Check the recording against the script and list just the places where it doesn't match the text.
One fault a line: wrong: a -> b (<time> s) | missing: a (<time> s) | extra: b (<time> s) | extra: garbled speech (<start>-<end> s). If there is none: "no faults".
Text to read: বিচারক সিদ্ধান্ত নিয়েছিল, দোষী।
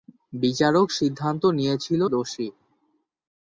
no faults